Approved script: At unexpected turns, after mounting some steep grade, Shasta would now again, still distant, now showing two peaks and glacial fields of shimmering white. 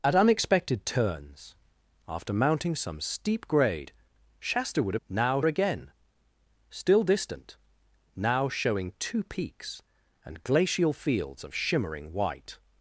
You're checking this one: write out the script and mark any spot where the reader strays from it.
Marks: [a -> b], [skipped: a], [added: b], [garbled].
At unexpected turns, after mounting some steep grade, Shasta would now again, still distant, now showing two peaks and glacial fields of shimmering white.